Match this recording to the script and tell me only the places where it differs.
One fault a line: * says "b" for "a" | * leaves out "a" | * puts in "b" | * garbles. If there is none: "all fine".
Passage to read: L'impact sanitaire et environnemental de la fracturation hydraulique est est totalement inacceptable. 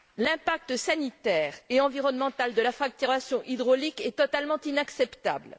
* leaves out "est"